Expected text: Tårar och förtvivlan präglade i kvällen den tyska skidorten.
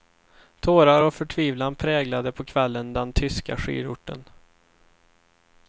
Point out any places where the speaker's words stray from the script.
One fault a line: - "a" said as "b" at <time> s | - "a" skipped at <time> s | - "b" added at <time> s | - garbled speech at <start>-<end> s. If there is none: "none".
- "i" said as "på" at 2.3 s